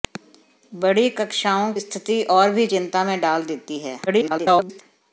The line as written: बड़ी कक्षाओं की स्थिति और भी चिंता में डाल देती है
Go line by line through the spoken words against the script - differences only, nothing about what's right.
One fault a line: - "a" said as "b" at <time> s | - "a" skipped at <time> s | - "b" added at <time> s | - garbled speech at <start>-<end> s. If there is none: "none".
- "की" skipped at 1.7 s
- garbled speech at 4.1-4.8 s